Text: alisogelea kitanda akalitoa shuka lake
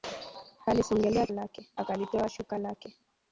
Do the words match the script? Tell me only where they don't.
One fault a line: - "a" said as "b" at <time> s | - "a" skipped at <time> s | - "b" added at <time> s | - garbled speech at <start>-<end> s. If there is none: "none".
- "kitanda" said as "lake" at 1.3 s